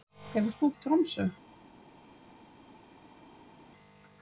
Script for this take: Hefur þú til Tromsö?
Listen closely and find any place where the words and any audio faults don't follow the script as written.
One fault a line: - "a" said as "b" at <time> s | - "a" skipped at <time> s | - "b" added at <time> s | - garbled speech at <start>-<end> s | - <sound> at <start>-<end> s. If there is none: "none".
none